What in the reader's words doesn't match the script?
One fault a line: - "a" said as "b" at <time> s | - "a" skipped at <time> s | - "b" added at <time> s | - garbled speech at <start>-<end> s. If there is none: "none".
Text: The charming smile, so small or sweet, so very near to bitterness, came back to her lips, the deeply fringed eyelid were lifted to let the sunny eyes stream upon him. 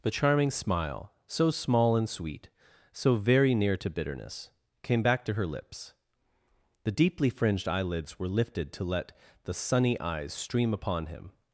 - "or" said as "and" at 2.0 s
- "eyelid" said as "eyelids" at 7.7 s